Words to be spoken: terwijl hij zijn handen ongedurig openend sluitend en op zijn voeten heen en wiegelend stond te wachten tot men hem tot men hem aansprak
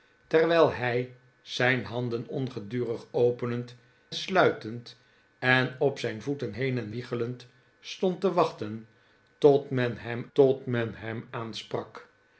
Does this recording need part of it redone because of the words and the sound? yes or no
no